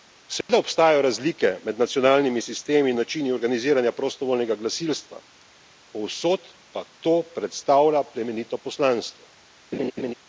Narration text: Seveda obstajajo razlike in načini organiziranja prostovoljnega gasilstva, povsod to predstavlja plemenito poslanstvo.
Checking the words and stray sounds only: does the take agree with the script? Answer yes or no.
no